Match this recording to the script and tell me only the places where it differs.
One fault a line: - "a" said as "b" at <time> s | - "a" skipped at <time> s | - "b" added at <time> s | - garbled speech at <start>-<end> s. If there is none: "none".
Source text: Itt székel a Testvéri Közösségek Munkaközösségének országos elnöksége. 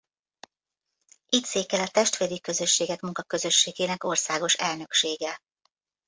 none